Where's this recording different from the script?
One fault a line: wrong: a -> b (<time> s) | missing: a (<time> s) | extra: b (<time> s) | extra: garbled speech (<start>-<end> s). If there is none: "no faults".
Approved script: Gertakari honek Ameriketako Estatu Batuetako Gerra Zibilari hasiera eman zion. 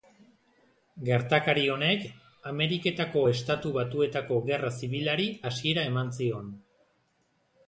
no faults